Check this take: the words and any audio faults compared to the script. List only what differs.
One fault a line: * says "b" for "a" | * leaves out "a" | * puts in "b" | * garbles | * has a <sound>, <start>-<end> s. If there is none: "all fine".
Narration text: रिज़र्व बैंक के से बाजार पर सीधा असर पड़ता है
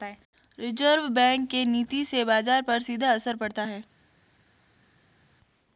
* puts in "नीति"